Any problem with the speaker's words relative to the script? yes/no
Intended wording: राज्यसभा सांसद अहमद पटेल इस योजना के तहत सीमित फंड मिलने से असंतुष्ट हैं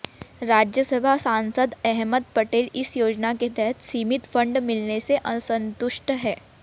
no